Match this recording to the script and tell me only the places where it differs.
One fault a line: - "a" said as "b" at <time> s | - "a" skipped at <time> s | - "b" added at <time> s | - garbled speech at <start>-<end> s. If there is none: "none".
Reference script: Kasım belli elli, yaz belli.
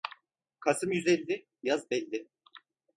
- "belli" said as "yüz" at 0.9 s